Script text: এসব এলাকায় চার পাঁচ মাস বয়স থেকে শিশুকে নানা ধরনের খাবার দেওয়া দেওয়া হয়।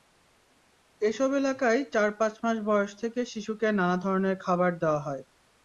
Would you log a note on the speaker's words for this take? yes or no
yes